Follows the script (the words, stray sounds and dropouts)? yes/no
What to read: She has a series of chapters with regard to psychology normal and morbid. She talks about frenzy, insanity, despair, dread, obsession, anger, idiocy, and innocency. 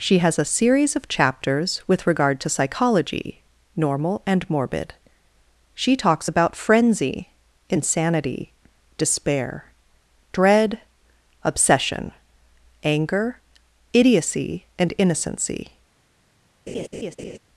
no